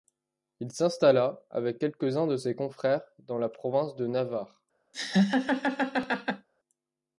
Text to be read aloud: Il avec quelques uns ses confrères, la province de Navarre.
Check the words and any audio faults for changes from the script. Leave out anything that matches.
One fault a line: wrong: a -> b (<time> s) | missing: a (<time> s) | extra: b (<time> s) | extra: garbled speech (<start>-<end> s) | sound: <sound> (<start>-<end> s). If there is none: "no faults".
extra: s'installa (0.7 s)
extra: de (2.2 s)
extra: dans (3.2 s)
sound: laugh (4.9-6.5 s)